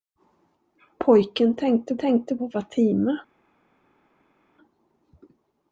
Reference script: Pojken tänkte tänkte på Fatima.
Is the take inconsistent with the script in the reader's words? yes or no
no